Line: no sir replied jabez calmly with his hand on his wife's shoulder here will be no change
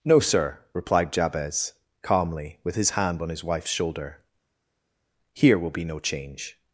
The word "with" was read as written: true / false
true